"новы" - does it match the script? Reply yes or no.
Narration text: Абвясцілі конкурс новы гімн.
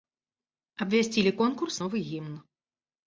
yes